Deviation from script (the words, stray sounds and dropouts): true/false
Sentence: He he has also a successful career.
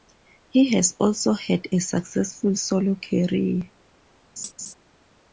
true